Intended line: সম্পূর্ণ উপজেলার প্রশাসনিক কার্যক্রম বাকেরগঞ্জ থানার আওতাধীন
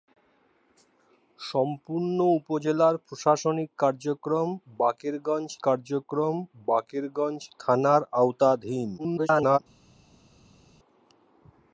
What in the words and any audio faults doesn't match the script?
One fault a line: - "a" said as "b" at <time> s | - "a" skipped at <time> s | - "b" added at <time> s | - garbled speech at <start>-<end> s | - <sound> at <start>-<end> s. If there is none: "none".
- "কার্যক্রম বাকেরগঞ্জ" added at 5.6 s
- garbled speech at 9.0-9.6 s